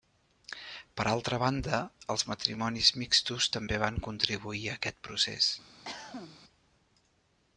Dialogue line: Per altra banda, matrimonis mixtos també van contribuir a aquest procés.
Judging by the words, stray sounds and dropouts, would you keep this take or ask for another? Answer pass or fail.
fail